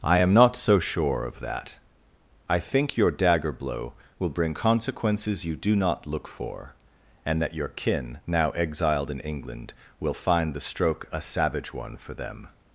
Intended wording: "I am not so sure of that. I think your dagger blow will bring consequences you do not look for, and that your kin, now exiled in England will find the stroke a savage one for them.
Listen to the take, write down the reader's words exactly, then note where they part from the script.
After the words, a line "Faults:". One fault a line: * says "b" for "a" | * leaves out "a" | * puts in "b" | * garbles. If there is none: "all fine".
"I am not so sure of that. I think your dagger blow will bring consequences you do not look for, and that your kin, now exiled in England will find the stroke a savage one for them.
Faults:
all fine